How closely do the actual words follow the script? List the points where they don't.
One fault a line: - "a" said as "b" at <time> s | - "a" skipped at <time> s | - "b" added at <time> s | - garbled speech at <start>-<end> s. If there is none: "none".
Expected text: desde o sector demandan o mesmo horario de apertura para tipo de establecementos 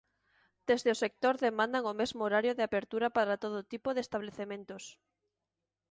- "todo" added at 3.4 s